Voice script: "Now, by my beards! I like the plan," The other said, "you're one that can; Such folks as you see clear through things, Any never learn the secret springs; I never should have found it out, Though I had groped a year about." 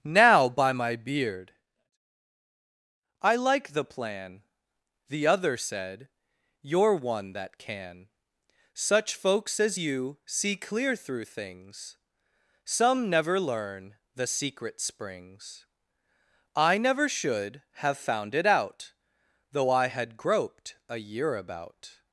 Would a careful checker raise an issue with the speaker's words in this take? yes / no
yes